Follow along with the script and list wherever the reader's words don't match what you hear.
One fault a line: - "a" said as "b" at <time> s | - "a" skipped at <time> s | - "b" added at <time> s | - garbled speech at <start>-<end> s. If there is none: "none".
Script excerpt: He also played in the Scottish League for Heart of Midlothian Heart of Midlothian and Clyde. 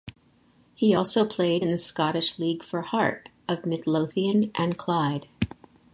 - "Heart of Midlothian" skipped at 4.5 s